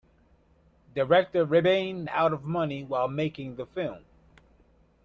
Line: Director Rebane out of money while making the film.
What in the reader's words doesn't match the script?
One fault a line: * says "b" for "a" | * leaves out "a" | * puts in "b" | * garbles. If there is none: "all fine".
all fine